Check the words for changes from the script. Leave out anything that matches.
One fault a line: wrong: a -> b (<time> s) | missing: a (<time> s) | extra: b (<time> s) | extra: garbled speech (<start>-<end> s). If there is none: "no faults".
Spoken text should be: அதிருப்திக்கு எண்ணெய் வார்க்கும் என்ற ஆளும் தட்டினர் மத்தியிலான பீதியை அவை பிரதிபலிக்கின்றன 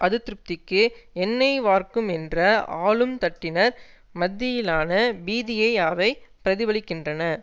no faults